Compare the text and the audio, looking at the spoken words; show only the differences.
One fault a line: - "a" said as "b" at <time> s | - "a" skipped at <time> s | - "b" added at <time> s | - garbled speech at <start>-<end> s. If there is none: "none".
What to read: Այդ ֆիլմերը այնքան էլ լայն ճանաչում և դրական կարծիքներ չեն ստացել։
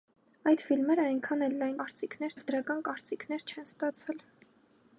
- "ճանաչում" said as "կարծիքներ" at 1.8 s